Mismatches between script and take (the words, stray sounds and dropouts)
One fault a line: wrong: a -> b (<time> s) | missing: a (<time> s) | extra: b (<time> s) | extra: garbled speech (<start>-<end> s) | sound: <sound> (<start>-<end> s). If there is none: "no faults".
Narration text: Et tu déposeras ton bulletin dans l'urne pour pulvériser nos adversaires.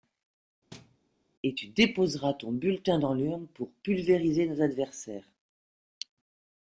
sound: thud (0.7-1.0 s)